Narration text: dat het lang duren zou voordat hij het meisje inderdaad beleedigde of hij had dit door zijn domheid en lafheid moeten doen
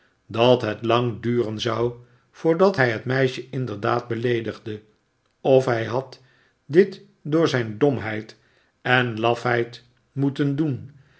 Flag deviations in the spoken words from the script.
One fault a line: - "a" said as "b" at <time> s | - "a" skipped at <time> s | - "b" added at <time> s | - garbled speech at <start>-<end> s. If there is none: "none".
none